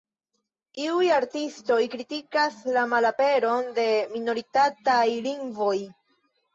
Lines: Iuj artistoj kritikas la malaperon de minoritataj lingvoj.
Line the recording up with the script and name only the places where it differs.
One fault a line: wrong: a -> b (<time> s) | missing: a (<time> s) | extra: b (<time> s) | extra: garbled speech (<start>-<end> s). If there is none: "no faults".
no faults